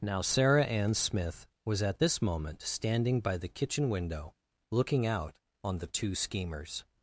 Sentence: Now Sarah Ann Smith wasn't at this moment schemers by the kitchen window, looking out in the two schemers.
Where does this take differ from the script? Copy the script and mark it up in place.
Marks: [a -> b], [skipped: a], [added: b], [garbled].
Now Sarah Ann Smith [wasn't -> was] at this moment [schemers -> standing] by the kitchen window, looking out [in -> on] the two schemers.